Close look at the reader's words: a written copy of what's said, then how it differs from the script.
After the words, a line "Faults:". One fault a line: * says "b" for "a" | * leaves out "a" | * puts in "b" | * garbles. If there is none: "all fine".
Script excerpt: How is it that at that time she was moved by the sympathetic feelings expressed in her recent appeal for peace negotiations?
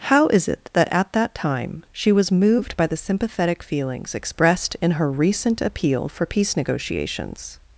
How is it that at that time she was moved by the sympathetic feelings expressed in her recent appeal for peace negotiations?
Faults:
all fine